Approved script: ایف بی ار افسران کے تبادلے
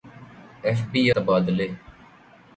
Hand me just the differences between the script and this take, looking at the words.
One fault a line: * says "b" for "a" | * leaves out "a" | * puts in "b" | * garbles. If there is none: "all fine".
* leaves out "ار افسران کے"